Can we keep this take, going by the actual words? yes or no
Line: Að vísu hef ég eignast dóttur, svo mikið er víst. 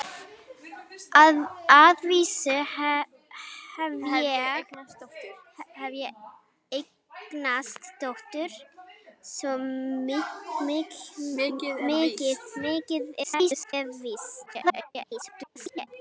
no